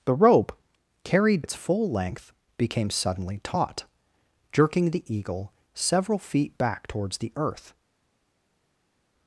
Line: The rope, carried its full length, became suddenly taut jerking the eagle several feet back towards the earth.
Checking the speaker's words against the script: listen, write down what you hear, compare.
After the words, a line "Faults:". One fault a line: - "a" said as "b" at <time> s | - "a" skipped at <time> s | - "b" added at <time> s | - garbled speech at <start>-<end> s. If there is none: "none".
The rope, carried its full length, became suddenly taut jerking the eagle several feet back towards the earth.
Faults:
none